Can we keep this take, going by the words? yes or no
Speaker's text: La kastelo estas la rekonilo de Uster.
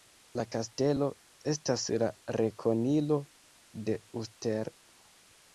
yes